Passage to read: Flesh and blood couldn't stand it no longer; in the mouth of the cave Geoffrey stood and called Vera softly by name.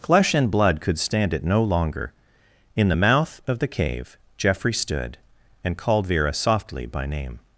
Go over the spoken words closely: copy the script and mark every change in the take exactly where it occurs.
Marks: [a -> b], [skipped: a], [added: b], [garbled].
Flesh and blood [couldn't -> could] stand it no longer; in the mouth of the cave Geoffrey stood and called Vera softly by name.